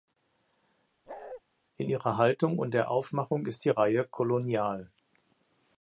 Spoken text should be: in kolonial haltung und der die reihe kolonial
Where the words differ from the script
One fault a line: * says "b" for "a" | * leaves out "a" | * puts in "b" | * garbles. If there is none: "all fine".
* says "ihrer" for "kolonial"
* puts in "aufmachung ist"